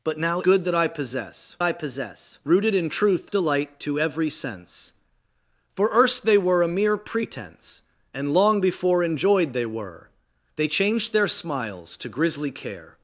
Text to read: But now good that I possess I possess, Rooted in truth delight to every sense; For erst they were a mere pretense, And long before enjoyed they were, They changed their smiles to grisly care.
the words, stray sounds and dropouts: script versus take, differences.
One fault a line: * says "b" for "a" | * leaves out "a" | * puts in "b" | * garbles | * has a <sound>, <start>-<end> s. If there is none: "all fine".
all fine